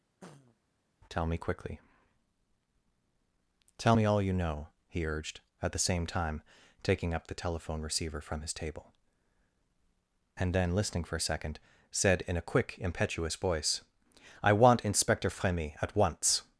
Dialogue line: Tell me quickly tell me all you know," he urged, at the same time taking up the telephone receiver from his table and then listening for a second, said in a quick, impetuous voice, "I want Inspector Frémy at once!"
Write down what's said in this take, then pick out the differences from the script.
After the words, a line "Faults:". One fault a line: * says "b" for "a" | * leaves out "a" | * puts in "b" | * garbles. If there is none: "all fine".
Tell me quickly tell me all you know," he urged, at the same time taking up the telephone receiver from his table and then listening for a second, said in a quick, impetuous voice, "I want Inspector Frémy at once!"
Faults:
all fine